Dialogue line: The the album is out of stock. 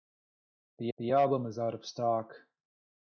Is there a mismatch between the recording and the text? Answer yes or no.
no